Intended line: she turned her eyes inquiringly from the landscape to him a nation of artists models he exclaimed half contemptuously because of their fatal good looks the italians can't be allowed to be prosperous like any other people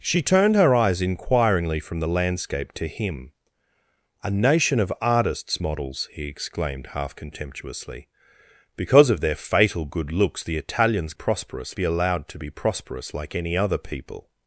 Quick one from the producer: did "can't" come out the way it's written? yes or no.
no